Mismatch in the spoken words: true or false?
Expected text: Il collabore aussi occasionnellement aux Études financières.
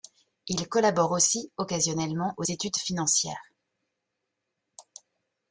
false